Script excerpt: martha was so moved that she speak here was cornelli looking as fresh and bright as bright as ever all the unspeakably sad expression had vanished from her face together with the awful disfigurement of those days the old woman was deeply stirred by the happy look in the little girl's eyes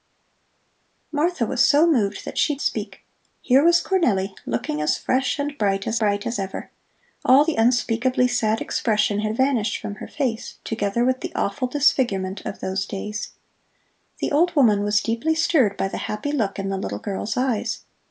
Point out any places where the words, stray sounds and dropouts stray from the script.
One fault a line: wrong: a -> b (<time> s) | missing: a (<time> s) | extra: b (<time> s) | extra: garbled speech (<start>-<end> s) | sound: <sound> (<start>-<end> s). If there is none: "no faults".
no faults